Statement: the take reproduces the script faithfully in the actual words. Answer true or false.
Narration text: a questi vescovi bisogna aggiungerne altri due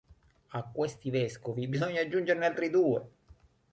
true